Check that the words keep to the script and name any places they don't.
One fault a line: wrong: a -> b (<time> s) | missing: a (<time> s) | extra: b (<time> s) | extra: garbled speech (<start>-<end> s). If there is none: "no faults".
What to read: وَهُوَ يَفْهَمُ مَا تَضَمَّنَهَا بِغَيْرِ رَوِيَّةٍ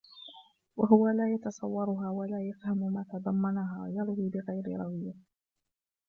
extra: لَا يَتَصَوَّرُهَا وَلَا (1.1 s)
extra: يَرْوِي (3.9 s)